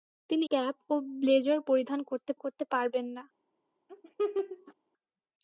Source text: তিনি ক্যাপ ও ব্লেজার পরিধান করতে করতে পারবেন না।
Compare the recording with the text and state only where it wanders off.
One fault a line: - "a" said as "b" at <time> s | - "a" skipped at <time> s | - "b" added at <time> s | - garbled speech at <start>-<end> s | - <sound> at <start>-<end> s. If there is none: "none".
- laugh at 3.9-4.7 s